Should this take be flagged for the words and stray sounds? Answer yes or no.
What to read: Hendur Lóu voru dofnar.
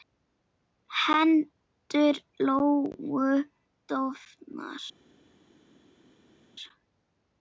yes